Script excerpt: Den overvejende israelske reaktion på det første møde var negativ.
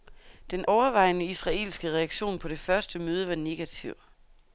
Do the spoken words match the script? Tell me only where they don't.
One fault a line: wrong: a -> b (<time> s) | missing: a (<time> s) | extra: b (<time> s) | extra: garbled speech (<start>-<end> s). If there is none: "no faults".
no faults